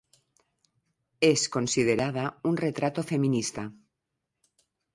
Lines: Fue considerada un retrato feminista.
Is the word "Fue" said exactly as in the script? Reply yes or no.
no